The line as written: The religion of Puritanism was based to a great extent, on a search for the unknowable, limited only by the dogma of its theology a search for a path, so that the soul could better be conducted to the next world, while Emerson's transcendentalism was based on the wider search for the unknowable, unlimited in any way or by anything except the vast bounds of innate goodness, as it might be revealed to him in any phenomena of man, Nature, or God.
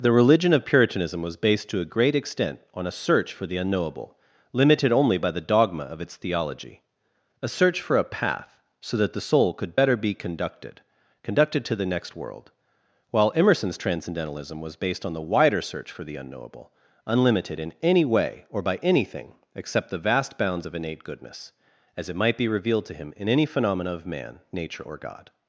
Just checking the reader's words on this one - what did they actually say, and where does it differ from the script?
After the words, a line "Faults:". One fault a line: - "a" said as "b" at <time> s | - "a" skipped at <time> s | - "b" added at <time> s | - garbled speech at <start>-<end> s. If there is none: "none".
The religion of Puritanism was based to a great extent, on a search for the unknowable, limited only by the dogma of its theology a search for a path, so that the soul could better be conducted conducted to the next world, while Emerson's transcendentalism was based on the wider search for the unknowable, unlimited in any way or by anything except the vast bounds of innate goodness, as it might be revealed to him in any phenomena of man, Nature, or God.
Faults:
- "conducted" added at 11.2 s